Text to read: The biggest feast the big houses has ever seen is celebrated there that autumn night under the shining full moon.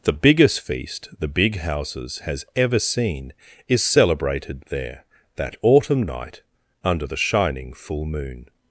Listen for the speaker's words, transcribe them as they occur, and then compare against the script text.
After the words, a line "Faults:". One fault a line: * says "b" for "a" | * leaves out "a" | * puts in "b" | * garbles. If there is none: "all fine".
The biggest feast the big houses has ever seen is celebrated there that autumn night under the shining full moon.
Faults:
all fine